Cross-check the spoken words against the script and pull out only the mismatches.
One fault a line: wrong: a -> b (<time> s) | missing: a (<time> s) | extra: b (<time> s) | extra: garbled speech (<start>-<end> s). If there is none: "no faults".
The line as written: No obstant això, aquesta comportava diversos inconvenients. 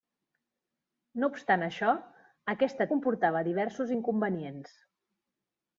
no faults